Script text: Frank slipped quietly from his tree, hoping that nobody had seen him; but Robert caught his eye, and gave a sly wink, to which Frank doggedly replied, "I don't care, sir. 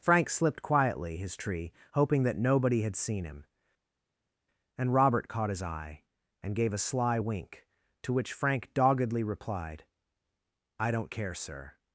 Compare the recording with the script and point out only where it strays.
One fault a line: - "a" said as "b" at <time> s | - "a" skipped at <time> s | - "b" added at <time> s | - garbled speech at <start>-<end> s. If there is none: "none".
- "from" skipped at 1.2 s
- "but" said as "and" at 4.8 s